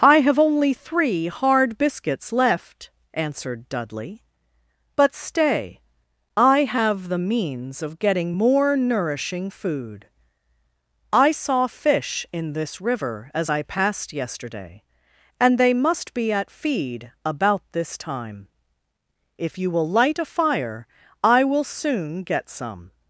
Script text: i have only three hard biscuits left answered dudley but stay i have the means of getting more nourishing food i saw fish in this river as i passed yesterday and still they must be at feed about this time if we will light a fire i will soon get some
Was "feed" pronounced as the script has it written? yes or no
yes